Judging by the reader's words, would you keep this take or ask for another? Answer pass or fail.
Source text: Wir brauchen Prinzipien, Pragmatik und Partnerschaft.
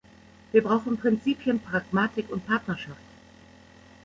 pass